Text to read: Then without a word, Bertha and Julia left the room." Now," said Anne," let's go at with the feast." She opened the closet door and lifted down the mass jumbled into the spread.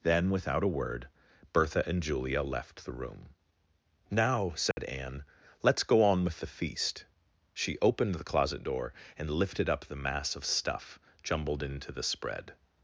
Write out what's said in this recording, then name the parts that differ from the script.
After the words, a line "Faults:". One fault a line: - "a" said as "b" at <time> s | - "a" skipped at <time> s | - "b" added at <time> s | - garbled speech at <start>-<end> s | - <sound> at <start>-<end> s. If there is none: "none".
Then without a word, Bertha and Julia left the room." Now," said Anne," let's go on with the feast." She opened the closet door and lifted up the mass of stuff jumbled into the spread.
Faults:
- dropout at 4.7-4.8 s
- "at" said as "on" at 6.0 s
- "down" said as "up" at 9.7 s
- "of stuff" added at 10.4 s